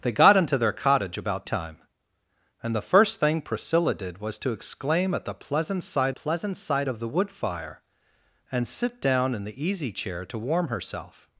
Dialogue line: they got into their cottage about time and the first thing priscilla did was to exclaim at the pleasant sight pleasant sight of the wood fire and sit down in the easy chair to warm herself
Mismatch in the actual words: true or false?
false